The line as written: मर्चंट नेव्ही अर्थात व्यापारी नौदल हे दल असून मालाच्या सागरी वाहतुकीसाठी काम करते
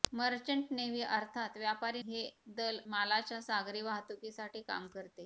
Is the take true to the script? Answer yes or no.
no